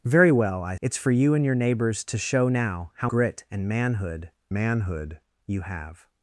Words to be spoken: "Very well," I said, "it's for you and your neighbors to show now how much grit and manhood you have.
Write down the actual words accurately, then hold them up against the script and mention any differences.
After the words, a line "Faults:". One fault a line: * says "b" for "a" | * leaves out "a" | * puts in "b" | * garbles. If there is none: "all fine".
"Very well," I "it's for you and your neighbors to show now how grit and manhood manhood you have.
Faults:
* leaves out "said"
* leaves out "much"
* puts in "manhood"